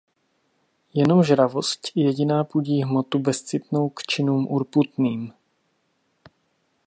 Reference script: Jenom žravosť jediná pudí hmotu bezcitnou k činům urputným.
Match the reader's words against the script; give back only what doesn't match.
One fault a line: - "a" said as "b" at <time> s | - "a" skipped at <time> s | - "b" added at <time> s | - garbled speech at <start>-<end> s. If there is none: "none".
none